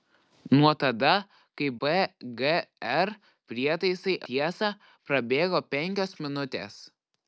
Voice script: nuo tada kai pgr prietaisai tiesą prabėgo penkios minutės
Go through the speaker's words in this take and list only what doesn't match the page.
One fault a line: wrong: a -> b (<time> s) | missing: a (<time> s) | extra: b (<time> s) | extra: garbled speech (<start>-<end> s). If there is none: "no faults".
no faults